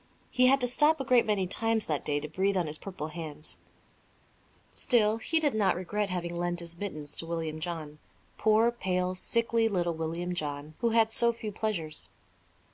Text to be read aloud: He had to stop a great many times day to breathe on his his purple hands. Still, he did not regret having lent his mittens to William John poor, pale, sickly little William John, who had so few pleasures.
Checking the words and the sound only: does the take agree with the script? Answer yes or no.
no